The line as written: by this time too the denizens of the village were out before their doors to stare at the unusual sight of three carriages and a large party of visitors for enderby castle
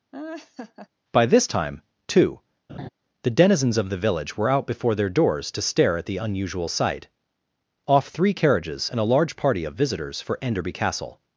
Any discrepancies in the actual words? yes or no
yes